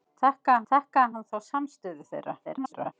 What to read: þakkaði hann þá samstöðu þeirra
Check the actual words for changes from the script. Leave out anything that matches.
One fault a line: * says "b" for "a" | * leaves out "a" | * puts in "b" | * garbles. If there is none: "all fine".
* puts in "þakkaði"
* garbles